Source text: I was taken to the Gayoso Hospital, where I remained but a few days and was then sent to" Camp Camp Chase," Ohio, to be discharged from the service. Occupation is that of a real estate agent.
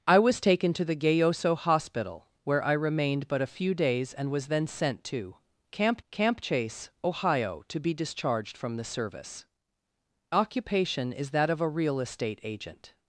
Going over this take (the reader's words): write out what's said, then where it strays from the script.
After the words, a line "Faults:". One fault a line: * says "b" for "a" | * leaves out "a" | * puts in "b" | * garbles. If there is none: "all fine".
I was taken to the Gayoso Hospital, where I remained but a few days and was then sent to" Camp Camp Chase," Ohio, to be discharged from the service. Occupation is that of a real estate agent.
Faults:
all fine